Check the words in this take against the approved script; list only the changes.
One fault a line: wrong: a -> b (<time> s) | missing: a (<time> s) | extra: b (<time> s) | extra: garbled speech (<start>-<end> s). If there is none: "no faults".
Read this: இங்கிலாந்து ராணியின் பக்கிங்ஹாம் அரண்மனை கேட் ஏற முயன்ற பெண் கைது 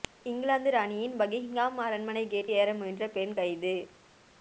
no faults